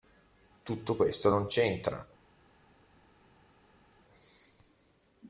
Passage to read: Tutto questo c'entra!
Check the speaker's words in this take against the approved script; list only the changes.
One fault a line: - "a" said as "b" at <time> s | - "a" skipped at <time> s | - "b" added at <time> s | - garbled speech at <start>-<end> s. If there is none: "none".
- "non" added at 1.3 s